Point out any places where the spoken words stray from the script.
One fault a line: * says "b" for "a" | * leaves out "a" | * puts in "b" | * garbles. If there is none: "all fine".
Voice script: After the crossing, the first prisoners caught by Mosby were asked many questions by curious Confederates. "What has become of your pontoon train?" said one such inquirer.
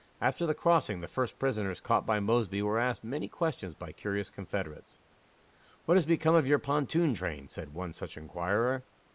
all fine